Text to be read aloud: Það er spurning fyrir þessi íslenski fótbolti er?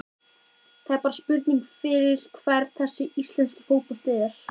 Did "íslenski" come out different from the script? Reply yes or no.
no